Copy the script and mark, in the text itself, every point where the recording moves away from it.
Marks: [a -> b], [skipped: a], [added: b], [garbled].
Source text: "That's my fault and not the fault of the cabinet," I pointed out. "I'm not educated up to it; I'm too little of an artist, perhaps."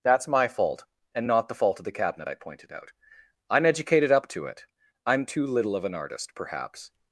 "That's my fault and not the fault of the cabinet," I pointed out. "I'm [skipped: not] educated up to it; I'm too little of an artist, perhaps."